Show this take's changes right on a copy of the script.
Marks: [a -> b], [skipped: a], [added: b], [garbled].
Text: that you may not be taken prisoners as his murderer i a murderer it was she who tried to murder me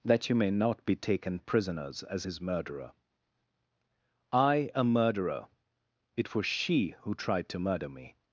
that you may not be taken prisoners as his murderer i a murderer it was she who tried to murder me